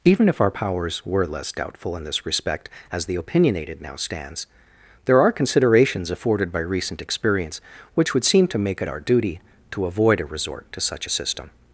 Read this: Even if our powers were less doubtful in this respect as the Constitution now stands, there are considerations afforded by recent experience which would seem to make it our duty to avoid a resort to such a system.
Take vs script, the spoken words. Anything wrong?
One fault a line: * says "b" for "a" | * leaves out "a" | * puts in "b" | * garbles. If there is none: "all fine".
* says "Opinionated" for "Constitution"